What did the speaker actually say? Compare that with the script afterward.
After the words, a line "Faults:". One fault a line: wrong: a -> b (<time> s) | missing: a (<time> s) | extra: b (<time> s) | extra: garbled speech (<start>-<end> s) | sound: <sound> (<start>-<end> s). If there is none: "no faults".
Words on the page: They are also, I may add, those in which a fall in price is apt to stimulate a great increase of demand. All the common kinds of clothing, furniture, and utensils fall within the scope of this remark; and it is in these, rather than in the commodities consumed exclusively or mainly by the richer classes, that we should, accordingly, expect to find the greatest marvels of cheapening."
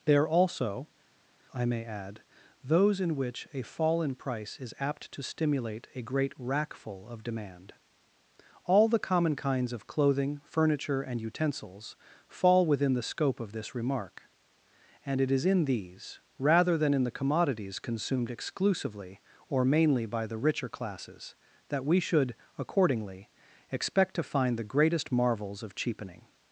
They are also, I may add, those in which a fall in price is apt to stimulate a great rackful of demand. All the common kinds of clothing, furniture, and utensils fall within the scope of this remark; and it is in these, rather than in the commodities consumed exclusively or mainly by the richer classes, that we should, accordingly, expect to find the greatest marvels of cheapening."
Faults:
wrong: increase -> rackful (6.4 s)